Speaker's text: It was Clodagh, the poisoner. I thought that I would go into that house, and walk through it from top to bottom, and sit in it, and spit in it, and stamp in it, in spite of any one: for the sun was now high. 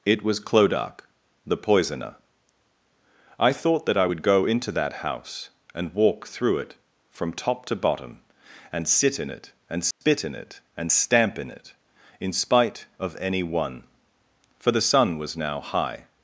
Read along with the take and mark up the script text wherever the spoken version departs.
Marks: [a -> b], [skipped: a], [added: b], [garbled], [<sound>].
It was Clodagh, the poisoner. I thought that I would go into that house, and walk through it from top to bottom, and sit in it, and spit [dropout] in it, and stamp in it, in spite of any one: for the sun was now high.